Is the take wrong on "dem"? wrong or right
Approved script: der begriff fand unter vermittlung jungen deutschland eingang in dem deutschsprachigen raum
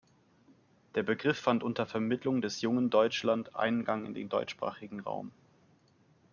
wrong